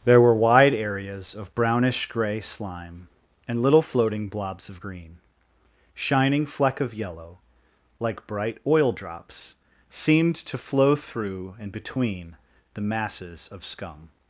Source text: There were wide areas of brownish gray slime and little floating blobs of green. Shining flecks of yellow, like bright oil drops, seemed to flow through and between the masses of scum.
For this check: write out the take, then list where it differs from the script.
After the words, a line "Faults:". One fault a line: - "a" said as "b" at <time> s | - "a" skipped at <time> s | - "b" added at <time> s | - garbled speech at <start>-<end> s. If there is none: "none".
There were wide areas of brownish gray slime and little floating blobs of green. Shining fleck of yellow, like bright oil drops, seemed to flow through and between the masses of scum.
Faults:
- "flecks" said as "fleck" at 6.4 s